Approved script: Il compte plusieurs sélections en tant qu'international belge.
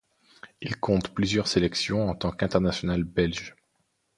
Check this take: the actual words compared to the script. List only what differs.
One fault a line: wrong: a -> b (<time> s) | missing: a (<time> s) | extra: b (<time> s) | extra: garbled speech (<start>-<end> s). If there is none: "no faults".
no faults